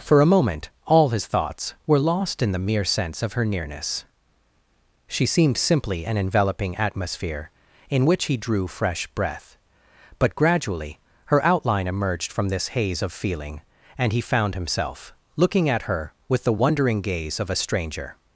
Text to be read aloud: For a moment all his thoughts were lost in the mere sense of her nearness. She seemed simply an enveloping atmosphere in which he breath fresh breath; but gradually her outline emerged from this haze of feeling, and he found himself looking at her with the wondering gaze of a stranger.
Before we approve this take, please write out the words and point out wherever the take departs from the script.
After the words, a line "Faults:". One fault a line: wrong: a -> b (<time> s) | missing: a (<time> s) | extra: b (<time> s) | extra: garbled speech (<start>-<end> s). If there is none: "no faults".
For a moment all his thoughts were lost in the mere sense of her nearness. She seemed simply an enveloping atmosphere in which he drew fresh breath; but gradually her outline emerged from this haze of feeling, and he found himself looking at her with the wondering gaze of a stranger.
Faults:
wrong: breath -> drew (8.3 s)